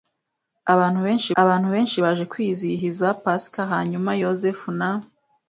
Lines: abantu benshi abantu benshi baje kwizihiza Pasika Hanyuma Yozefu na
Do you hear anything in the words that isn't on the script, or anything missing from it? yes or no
no